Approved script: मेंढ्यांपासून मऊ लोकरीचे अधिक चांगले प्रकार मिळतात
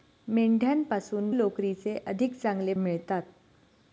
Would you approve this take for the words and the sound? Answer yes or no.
no